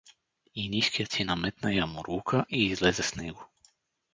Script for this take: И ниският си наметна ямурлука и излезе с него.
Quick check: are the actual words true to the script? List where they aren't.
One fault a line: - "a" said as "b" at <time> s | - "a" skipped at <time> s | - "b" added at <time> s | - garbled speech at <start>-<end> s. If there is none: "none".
none